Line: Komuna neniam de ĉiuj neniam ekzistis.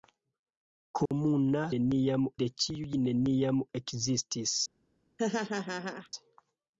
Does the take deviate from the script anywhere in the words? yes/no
no